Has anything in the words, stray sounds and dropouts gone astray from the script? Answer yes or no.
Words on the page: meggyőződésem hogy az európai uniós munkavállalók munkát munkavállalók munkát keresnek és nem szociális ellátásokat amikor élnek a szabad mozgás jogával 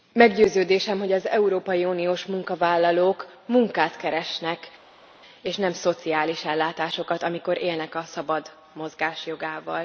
yes